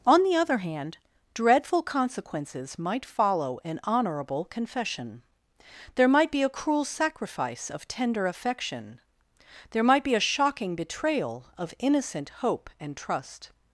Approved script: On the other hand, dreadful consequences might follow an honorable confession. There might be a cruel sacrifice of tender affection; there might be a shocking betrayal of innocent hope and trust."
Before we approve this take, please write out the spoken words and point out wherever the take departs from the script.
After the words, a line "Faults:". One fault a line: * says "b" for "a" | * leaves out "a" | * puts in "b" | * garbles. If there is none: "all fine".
On the other hand, dreadful consequences might follow an honorable confession. There might be a cruel sacrifice of tender affection; there might be a shocking betrayal of innocent hope and trust."
Faults:
all fine